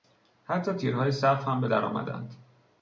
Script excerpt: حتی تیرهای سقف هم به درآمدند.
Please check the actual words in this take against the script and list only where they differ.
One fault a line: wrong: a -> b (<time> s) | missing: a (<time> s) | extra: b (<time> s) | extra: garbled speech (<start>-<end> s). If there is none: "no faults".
no faults